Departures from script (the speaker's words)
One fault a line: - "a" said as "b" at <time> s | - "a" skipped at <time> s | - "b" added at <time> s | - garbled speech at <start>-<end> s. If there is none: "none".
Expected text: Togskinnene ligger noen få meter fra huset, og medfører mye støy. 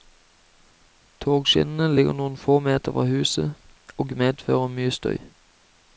none